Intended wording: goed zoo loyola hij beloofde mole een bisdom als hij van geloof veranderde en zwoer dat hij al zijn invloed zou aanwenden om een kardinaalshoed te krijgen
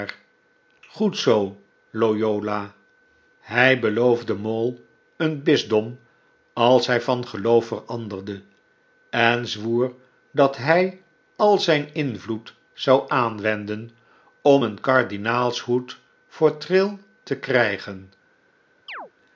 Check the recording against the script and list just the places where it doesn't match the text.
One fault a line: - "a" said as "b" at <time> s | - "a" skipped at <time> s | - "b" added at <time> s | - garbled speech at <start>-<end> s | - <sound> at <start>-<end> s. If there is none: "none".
- "voor trail" added at 16.3 s
- chirp at 18.9-19.1 s